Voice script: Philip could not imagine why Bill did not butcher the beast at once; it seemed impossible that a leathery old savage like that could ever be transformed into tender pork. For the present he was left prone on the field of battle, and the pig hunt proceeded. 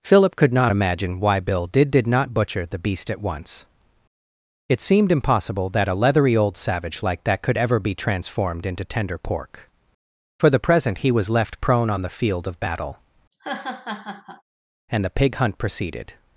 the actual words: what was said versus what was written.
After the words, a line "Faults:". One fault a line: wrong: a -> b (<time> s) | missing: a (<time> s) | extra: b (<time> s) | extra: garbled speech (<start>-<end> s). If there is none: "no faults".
Philip could not imagine why Bill did did not butcher the beast at once; it seemed impossible that a leathery old savage like that could ever be transformed into tender pork. For the present he was left prone on the field of battle, and the pig hunt proceeded.
Faults:
extra: did (1.9 s)